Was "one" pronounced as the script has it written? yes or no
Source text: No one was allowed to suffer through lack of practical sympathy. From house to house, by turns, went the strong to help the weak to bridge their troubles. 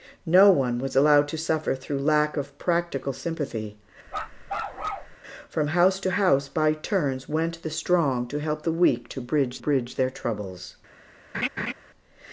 yes